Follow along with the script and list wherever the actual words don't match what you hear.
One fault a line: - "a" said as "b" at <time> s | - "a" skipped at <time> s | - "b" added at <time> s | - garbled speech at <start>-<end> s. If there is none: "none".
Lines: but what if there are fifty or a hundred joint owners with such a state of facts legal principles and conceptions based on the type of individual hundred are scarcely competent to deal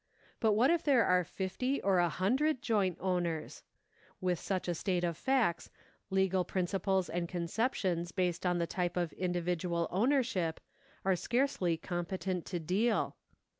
- "hundred" said as "ownership" at 9.9 s